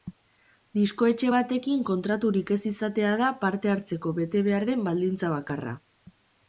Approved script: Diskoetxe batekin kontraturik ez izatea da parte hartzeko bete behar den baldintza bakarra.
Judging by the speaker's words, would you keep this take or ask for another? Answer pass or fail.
pass